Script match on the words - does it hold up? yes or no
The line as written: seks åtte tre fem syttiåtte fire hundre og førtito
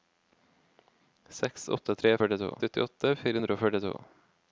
no